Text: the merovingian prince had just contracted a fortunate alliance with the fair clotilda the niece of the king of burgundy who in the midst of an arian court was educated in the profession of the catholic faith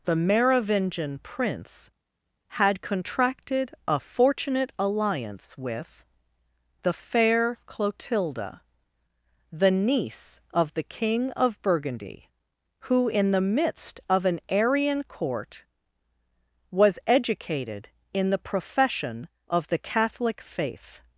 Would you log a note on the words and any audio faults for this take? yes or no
yes